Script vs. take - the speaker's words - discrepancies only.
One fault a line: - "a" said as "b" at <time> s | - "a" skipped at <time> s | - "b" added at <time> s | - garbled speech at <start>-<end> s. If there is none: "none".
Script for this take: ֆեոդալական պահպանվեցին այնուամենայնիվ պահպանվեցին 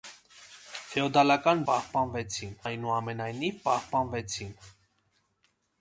none